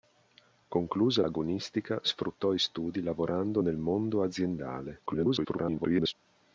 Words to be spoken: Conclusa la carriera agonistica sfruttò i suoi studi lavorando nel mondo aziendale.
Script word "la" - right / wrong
wrong